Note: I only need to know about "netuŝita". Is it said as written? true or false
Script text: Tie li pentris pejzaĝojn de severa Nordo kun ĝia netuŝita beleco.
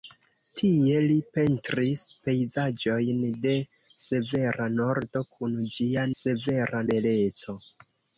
false